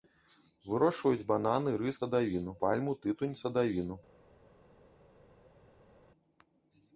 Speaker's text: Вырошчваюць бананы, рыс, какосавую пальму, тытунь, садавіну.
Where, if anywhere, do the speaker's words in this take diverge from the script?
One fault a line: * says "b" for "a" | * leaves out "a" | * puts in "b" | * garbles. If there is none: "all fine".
* says "садавіну" for "какосавую"